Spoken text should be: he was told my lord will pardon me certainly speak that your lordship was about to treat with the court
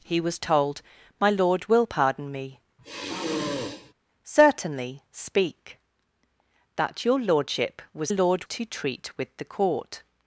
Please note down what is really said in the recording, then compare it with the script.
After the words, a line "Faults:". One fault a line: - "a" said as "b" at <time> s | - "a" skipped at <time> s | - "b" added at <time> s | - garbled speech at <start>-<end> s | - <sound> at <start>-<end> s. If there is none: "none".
he was told my lord will pardon me certainly speak that your lordship was lord to treat with the court
Faults:
- sigh at 2.8-3.9 s
- "about" said as "lord" at 8.1 s